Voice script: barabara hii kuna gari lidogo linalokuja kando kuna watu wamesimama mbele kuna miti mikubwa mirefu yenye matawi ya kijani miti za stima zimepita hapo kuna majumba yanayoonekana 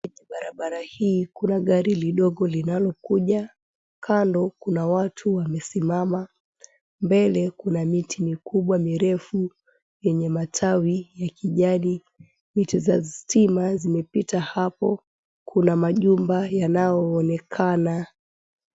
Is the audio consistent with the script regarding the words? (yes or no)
yes